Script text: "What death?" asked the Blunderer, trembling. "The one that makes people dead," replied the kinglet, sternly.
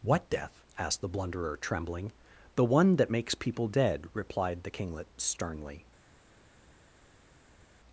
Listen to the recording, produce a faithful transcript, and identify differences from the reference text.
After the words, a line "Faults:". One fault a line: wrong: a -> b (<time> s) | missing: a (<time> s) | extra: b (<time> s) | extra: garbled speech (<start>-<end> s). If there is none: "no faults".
"What death?" asked the Blunderer, trembling. "The one that makes people dead," replied the kinglet, sternly.
Faults:
no faults